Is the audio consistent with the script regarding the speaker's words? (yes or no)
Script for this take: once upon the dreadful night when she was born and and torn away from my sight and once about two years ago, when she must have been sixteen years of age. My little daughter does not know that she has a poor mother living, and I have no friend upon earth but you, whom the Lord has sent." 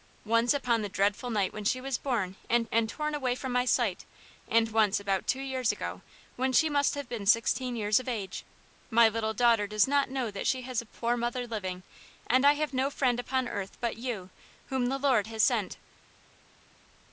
yes